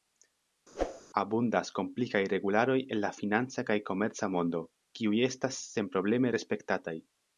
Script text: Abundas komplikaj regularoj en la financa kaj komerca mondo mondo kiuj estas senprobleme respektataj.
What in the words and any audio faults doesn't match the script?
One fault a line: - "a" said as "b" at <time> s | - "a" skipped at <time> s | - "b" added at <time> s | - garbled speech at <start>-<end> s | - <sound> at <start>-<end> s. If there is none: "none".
- whoosh at 0.7-1.0 s
- "mondo" skipped at 4.6 s